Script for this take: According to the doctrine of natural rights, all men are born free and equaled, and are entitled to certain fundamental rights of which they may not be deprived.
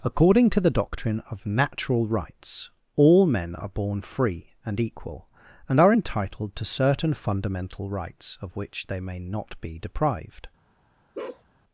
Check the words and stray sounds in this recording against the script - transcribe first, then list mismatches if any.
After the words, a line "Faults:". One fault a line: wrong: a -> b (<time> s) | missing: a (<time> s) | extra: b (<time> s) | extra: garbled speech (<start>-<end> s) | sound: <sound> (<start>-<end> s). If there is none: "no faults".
According to the doctrine of natural rights, all men are born free and equal, and are entitled to certain fundamental rights of which they may not be deprived.
Faults:
wrong: equaled -> equal (4.8 s)
sound: bark (11.1-11.4 s)